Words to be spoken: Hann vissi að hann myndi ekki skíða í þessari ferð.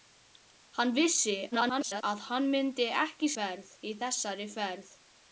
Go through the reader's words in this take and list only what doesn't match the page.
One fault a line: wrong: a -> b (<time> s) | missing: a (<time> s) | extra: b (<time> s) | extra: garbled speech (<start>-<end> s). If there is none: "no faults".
extra: garbled speech (1.5-2.0 s)
wrong: skíða -> ferð (3.4 s)